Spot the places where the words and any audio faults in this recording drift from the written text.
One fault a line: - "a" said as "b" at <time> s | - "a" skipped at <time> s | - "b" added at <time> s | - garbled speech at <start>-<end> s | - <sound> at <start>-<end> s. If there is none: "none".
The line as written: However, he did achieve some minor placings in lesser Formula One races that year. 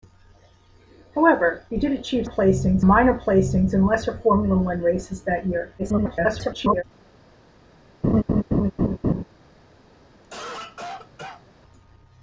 - "some" said as "placings" at 2.2 s
- garbled speech at 5.8-6.8 s
- laugh at 8.0-9.2 s
- cough at 10.2-11.5 s